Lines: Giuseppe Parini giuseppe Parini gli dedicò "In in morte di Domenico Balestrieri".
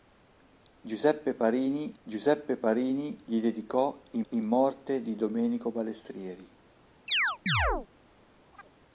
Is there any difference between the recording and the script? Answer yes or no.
no